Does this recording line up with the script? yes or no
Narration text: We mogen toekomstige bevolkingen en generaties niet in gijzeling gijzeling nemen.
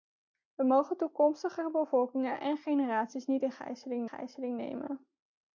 yes